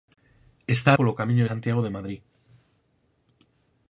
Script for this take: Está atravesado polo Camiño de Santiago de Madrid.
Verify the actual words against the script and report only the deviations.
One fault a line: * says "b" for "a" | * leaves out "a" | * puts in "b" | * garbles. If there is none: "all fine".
* leaves out "atravesado"
* leaves out "de"